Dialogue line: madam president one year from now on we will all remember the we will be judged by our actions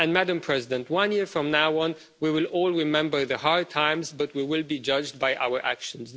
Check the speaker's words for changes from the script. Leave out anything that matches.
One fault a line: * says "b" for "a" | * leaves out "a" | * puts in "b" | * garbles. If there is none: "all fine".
* puts in "hard times but"